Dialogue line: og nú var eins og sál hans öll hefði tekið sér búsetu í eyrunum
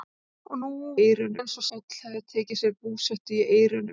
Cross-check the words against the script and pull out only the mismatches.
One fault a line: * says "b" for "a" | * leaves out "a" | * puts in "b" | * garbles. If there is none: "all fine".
* says "eyrunum" for "var"
* leaves out "sál hans"